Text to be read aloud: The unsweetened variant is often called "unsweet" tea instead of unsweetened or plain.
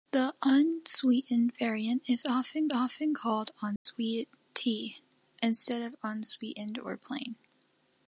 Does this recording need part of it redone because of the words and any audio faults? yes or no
yes